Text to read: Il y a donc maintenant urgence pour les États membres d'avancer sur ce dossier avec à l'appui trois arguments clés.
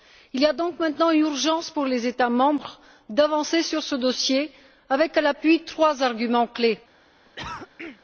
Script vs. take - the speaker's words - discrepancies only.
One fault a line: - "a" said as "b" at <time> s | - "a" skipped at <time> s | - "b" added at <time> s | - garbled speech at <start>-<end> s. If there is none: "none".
none